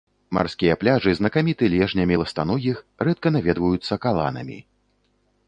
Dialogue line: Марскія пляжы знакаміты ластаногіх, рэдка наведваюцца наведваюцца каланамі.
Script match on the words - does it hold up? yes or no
no